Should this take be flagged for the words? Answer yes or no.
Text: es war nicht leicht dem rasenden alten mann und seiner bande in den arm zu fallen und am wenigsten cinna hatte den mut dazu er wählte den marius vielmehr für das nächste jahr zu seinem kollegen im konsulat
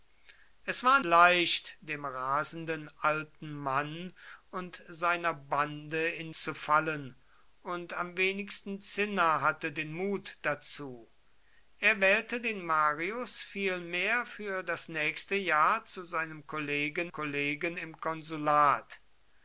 yes